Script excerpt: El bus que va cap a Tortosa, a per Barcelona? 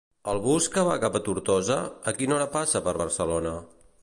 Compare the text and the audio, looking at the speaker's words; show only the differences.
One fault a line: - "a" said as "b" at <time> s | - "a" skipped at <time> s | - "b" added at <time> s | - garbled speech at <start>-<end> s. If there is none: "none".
- "quina hora passa" added at 2.2 s